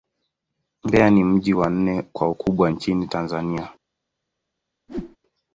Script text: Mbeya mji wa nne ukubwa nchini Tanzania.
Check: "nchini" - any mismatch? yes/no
no